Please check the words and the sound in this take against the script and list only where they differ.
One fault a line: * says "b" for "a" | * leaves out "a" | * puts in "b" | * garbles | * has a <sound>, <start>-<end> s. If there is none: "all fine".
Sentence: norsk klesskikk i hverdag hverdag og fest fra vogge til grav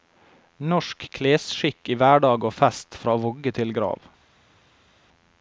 * leaves out "hverdag"